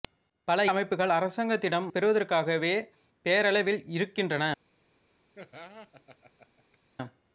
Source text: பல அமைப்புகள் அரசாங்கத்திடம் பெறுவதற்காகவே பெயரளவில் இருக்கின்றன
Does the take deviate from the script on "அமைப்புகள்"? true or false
false